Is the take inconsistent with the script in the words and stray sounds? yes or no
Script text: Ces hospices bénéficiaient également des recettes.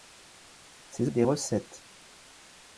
yes